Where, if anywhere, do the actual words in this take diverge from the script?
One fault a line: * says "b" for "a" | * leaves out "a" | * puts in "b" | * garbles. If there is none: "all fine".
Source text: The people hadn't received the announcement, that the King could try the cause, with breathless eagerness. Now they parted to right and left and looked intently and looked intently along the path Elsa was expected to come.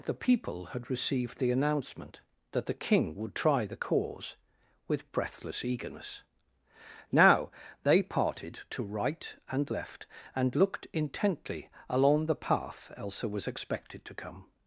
* says "had" for "hadn't"
* says "would" for "could"
* leaves out "and looked intently"